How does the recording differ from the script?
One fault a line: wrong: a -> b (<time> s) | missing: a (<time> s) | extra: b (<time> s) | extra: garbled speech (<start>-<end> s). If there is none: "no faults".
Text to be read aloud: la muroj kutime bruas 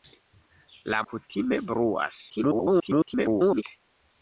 missing: muroj (1.0 s)
extra: garbled speech (2.3-3.6 s)